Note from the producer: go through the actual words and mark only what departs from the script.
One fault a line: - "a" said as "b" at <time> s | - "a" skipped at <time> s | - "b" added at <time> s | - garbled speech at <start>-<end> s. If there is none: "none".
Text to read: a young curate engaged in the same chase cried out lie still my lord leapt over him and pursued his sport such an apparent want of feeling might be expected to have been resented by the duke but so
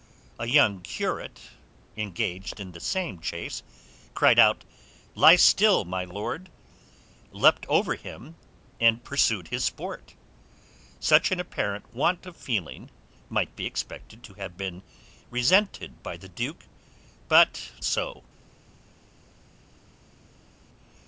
none